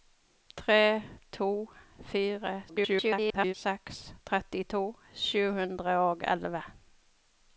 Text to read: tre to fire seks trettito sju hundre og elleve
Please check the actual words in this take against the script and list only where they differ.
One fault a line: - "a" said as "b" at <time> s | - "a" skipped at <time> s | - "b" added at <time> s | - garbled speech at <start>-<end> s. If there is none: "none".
- garbled speech at 2.7-3.5 s